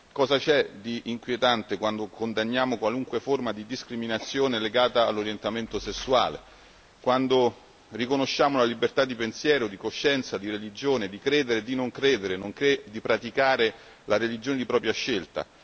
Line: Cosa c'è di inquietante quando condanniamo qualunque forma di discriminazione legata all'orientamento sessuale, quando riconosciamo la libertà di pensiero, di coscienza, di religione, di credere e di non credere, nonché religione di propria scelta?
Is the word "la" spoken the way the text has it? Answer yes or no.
yes